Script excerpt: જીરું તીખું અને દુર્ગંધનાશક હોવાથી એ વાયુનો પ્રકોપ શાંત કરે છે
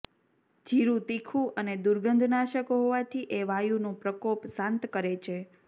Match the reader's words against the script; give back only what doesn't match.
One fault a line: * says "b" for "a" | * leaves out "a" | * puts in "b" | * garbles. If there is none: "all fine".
all fine